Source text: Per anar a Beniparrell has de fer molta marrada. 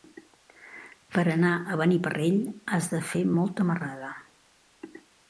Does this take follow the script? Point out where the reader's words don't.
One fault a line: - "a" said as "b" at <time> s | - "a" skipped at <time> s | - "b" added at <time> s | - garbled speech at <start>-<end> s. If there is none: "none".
none